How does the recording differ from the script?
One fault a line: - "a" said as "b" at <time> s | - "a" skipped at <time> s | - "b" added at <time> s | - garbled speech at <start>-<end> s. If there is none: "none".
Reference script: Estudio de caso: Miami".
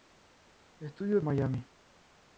- "de caso" skipped at 1.2 s